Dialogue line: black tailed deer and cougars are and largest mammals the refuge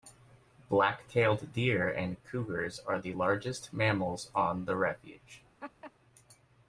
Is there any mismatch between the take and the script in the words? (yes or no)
yes